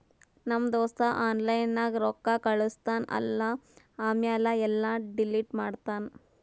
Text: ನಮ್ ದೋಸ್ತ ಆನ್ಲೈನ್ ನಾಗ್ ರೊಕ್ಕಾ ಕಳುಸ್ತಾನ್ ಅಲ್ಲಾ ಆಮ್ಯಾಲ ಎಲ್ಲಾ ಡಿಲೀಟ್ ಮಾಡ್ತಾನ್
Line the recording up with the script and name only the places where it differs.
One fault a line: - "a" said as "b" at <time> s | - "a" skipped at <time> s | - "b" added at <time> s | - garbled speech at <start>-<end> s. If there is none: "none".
none